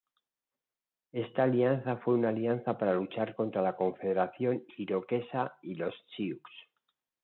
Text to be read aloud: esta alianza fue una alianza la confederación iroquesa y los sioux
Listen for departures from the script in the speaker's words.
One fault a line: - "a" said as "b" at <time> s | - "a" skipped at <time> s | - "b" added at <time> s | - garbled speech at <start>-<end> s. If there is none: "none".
- "para luchar contra" added at 2.8 s